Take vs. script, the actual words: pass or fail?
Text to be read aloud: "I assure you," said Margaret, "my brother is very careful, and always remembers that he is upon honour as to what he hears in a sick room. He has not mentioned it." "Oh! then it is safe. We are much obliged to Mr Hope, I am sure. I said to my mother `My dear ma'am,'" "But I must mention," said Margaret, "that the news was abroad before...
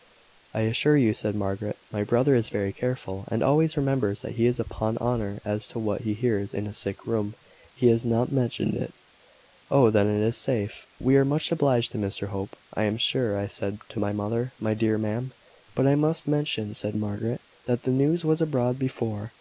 pass